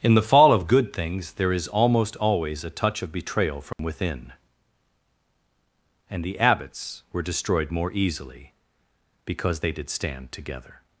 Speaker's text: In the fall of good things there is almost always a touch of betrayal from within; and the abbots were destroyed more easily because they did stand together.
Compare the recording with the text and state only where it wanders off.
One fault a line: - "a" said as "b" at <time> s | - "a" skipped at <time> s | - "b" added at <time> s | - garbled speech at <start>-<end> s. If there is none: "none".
none